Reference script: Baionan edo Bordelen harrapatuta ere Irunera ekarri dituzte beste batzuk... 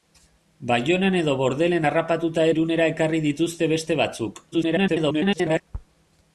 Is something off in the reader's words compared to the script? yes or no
yes